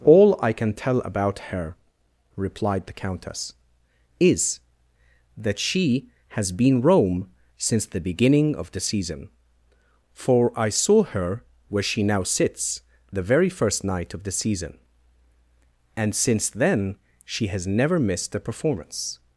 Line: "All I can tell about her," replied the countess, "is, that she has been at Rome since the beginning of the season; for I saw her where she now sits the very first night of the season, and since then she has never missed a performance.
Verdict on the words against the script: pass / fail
fail